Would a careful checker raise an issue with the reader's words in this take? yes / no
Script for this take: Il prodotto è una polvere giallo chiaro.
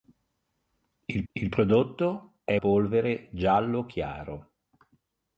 yes